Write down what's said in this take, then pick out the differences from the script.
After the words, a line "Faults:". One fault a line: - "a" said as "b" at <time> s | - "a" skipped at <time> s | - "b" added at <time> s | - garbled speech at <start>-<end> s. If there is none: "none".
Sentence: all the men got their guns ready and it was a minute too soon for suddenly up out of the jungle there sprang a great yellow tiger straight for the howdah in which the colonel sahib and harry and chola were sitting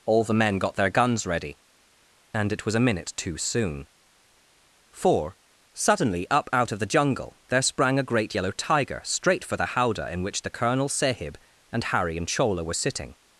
all the men got their guns ready and it was a minute too soon for suddenly up out of the jungle there sprang a great yellow tiger straight for the howdah in which the colonel sahib and harry and chola were sitting
Faults:
none